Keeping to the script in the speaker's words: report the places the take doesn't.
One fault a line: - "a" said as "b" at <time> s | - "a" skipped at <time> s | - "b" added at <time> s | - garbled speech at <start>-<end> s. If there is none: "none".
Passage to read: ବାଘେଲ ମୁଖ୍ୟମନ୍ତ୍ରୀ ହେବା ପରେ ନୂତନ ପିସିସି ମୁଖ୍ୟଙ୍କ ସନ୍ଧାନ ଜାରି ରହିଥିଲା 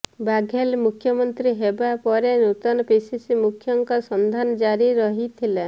none